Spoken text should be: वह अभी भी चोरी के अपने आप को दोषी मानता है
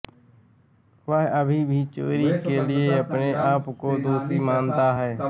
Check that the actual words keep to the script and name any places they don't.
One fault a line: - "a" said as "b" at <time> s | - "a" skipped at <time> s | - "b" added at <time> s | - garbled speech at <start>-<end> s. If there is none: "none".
- "लिए" added at 2.7 s